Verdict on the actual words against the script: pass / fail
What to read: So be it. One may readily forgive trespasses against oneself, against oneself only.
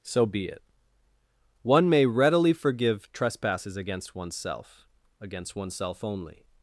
pass